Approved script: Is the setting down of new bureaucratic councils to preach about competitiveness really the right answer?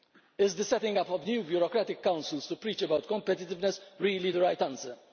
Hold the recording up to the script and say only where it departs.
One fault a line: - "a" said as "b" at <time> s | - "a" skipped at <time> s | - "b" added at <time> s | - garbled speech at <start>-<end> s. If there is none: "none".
- "down" said as "up" at 1.0 s